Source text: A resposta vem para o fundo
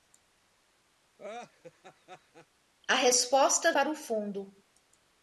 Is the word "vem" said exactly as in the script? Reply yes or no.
no